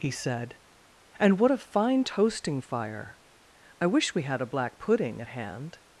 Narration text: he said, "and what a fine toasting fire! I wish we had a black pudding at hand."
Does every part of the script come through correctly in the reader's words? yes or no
yes